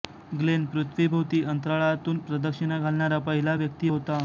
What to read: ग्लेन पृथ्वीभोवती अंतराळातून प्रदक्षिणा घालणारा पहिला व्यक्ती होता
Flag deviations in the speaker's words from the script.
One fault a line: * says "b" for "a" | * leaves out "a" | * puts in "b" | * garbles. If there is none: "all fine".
all fine